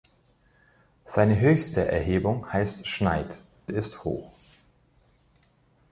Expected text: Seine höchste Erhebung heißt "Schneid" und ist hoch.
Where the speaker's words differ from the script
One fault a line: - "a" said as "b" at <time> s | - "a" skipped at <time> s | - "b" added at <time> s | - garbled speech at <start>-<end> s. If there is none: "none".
- "und" skipped at 3.4 s